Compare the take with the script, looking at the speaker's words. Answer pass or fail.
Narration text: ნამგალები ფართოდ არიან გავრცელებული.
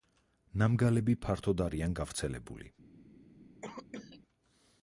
pass